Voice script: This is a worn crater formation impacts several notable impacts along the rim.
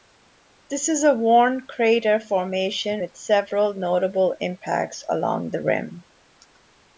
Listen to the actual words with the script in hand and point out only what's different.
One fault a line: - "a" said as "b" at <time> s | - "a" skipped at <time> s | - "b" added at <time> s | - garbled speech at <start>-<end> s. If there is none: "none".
- "impacts" said as "with" at 3.0 s